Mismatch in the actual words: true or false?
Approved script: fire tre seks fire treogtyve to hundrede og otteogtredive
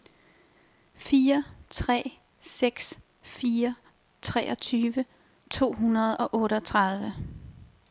false